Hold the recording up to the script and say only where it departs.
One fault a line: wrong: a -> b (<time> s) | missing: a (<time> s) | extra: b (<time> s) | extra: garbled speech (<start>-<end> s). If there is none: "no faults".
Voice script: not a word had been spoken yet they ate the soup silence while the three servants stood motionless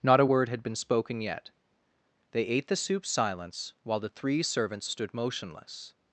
no faults